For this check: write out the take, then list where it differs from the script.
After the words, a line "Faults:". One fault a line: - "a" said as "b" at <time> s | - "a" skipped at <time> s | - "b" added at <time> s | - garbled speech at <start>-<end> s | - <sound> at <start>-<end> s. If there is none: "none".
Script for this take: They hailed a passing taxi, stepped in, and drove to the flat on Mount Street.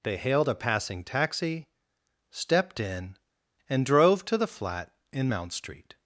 They hailed a passing taxi, stepped in, and drove to the flat in Mount Street.
Faults:
- "on" said as "in" at 5.1 s